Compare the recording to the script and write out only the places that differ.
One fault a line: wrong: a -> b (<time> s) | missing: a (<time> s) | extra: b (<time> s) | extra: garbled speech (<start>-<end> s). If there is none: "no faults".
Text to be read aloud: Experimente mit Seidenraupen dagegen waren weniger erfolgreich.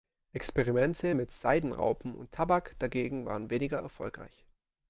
extra: und Tabak (2.1 s)